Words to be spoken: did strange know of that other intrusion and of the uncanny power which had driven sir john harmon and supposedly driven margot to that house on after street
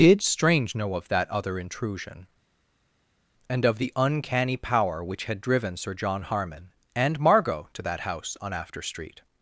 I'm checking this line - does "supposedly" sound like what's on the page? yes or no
no